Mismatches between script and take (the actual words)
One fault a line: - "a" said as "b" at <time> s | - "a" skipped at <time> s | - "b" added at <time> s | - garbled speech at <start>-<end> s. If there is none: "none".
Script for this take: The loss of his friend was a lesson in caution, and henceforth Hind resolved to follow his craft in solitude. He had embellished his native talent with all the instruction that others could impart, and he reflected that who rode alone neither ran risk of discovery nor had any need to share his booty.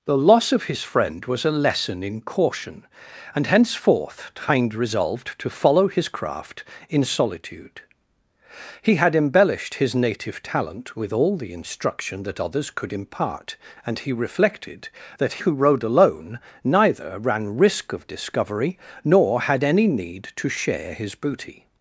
none